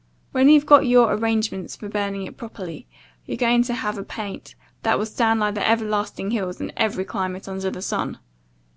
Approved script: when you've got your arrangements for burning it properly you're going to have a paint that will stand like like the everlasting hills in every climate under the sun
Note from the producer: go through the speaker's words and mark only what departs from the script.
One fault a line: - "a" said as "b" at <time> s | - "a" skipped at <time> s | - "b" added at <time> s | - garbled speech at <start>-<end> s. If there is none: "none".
- "like" skipped at 5.5 s